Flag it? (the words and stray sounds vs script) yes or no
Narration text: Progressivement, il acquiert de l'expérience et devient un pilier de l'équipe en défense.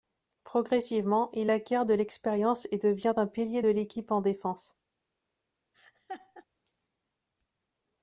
yes